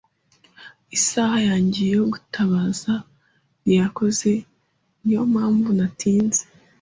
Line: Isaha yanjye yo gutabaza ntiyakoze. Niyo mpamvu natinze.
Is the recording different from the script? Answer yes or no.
no